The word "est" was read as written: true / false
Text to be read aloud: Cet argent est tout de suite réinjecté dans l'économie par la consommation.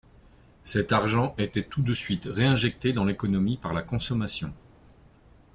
false